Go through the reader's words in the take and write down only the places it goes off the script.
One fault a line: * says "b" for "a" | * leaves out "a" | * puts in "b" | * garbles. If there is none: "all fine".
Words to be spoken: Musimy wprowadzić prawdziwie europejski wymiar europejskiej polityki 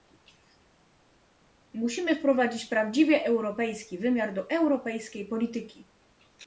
* puts in "do"